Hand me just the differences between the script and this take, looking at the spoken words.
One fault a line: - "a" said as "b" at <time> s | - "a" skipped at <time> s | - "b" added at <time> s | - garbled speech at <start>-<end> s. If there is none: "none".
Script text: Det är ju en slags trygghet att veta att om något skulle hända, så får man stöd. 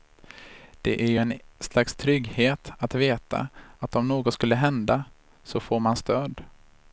none